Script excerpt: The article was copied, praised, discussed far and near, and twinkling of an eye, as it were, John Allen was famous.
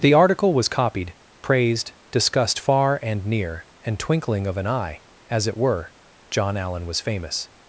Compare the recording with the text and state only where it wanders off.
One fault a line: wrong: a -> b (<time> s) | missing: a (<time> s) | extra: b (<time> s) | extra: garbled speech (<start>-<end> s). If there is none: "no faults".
no faults